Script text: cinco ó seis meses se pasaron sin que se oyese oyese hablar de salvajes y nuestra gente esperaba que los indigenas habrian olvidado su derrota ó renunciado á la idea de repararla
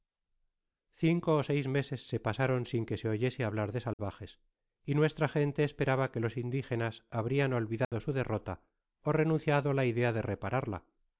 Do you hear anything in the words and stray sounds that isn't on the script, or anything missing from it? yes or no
yes